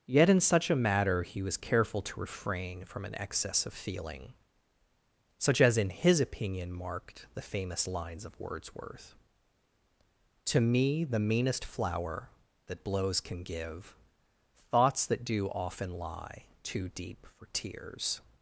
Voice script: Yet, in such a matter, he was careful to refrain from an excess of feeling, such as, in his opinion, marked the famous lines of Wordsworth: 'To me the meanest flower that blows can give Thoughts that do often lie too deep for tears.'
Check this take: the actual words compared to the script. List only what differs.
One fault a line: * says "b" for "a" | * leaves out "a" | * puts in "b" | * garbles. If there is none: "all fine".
all fine